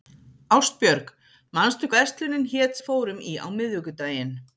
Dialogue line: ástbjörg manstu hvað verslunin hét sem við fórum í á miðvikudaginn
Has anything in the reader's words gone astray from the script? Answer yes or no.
yes